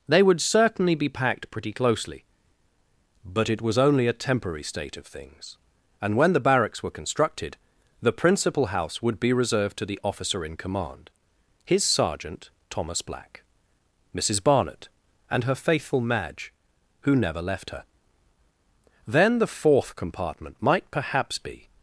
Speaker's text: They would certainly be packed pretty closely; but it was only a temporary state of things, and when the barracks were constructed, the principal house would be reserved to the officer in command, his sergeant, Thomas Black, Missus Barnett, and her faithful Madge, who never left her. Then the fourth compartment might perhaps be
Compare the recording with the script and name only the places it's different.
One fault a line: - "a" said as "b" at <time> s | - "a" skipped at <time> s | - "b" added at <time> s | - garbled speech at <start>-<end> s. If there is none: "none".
none